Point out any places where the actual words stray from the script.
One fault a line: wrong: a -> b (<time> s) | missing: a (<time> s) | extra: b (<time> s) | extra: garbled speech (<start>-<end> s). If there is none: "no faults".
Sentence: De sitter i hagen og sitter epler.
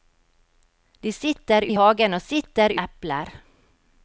no faults